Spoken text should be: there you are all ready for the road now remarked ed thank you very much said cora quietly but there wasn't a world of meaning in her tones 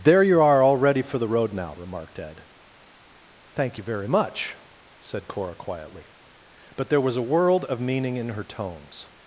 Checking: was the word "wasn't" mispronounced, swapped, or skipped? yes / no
yes